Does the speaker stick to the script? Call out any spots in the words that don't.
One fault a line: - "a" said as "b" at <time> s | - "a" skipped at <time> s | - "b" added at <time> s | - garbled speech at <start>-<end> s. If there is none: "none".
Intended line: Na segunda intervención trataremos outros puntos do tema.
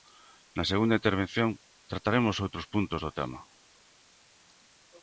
none